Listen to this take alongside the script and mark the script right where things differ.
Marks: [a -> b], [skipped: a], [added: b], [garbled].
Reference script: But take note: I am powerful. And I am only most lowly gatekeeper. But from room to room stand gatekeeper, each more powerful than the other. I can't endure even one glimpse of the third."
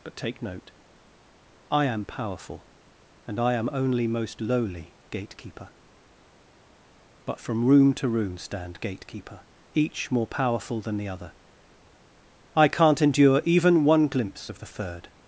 But take note: I am powerful. And I am only most lowly gatekeeper. But from room to room stand gatekeeper, each more powerful than the other. I can't endure even one glimpse of the third."